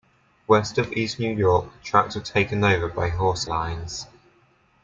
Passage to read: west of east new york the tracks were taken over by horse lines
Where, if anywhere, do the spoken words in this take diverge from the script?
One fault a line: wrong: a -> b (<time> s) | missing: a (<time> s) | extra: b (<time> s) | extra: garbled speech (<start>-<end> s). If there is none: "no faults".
no faults